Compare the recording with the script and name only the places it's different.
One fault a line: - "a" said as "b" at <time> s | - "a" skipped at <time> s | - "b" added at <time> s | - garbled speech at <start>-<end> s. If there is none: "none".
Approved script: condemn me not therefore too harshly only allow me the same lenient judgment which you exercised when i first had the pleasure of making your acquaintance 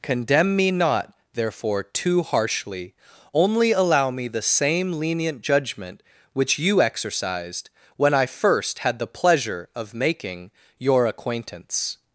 none